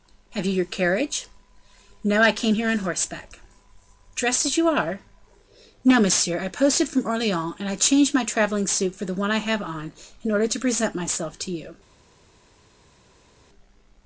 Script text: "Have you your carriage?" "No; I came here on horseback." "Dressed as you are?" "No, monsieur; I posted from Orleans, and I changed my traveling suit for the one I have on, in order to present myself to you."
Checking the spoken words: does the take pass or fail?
pass